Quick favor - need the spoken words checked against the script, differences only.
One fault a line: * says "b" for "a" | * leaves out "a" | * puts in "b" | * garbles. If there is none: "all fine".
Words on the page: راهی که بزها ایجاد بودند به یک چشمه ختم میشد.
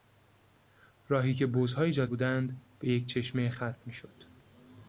all fine